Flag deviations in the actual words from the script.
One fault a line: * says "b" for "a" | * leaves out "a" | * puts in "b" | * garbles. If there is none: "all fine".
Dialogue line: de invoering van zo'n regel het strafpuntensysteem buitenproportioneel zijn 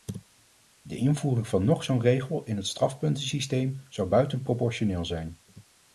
* puts in "nog"
* puts in "in"
* puts in "zou"